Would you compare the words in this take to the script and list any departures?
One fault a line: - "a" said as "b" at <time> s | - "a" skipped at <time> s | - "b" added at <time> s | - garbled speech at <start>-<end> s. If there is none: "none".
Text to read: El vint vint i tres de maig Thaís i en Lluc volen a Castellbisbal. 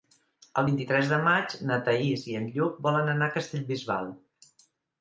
- "vint" skipped at 0.8 s
- "na" added at 1.7 s
- "anar" added at 3.2 s